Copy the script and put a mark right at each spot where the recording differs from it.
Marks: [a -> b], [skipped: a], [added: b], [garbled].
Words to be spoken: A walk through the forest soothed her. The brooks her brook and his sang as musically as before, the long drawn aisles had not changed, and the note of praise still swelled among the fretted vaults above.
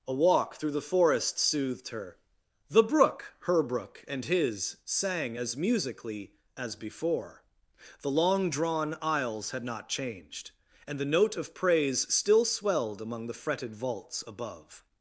A walk through the forest soothed her. The [brooks -> brook] her brook and his sang as musically as before, the long drawn aisles had not changed, and the note of praise still swelled among the fretted vaults above.